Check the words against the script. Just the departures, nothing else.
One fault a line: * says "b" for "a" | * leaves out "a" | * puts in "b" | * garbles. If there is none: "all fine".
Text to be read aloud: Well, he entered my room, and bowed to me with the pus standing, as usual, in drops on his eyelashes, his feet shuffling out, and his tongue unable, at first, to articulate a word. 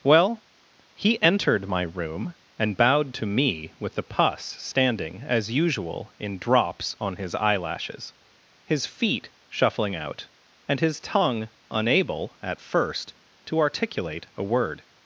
all fine